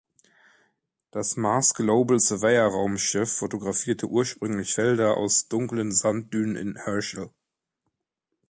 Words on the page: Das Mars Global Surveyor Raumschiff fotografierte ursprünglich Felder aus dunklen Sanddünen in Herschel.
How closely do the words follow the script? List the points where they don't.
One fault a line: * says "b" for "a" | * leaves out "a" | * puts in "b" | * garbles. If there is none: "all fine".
all fine